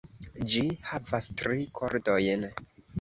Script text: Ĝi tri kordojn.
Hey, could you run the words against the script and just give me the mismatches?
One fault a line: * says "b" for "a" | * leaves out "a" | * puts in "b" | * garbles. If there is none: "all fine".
* puts in "havas"